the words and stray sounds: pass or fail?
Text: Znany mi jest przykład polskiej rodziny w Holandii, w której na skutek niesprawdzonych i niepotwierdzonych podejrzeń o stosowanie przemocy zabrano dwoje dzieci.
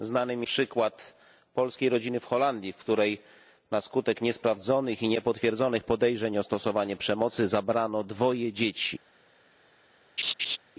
fail